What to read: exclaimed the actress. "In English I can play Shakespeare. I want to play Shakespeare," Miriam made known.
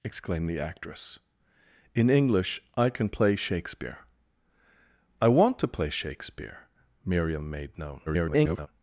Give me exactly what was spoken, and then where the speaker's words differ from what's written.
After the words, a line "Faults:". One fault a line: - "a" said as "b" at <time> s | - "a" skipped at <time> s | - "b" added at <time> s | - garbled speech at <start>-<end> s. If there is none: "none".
exclaimed the actress. "In English I can play Shakespeare. I want to play Shakespeare," Miriam made known. [garbled]
Faults:
- garbled speech at 8.1-8.7 s